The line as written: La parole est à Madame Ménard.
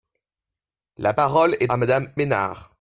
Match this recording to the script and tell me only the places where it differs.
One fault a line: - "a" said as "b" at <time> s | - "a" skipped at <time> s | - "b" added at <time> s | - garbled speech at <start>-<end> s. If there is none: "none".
none